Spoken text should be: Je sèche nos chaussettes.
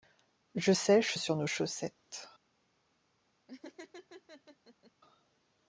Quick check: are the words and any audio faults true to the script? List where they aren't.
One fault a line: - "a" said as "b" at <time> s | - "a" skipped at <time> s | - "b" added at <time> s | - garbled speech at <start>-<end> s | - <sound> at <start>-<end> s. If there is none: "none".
- "sur" added at 1.2 s
- laugh at 3.5-4.9 s